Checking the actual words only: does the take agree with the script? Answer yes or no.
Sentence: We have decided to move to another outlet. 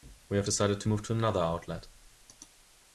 yes